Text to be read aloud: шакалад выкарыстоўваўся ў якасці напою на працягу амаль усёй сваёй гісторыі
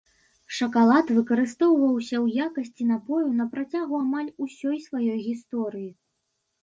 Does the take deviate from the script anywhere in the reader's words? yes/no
no